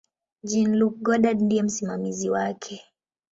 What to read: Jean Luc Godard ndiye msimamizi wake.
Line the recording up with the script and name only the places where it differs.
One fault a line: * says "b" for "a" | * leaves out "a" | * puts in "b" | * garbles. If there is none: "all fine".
all fine